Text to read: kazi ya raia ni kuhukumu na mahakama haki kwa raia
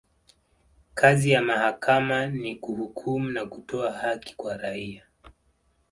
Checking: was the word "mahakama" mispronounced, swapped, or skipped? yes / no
yes